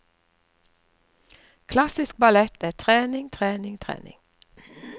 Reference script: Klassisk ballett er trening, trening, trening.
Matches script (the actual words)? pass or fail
pass